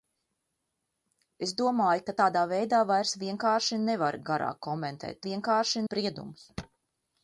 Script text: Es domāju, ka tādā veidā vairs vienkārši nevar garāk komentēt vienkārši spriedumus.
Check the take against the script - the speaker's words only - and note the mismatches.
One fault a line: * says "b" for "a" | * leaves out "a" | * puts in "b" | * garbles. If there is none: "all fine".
all fine